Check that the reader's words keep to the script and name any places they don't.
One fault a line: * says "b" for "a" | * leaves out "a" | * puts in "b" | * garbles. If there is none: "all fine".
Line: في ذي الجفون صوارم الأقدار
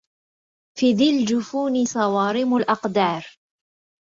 all fine